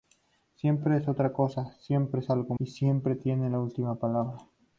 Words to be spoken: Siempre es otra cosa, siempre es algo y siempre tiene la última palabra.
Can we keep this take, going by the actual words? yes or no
yes